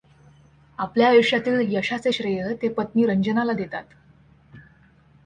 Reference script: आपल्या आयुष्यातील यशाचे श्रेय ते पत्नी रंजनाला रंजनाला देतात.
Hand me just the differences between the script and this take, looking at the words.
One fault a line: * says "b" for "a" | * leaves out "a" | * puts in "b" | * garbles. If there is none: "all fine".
* leaves out "रंजनाला"